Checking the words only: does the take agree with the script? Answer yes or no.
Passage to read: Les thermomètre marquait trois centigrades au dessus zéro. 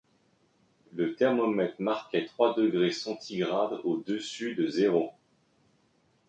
no